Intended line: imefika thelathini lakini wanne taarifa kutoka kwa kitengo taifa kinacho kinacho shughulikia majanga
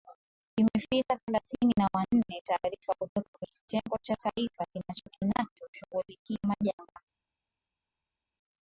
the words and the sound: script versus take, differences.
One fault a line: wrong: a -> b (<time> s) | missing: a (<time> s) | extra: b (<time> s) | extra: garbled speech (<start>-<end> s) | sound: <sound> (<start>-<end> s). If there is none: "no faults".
wrong: lakini -> na (1.8 s)
extra: cha (4.0 s)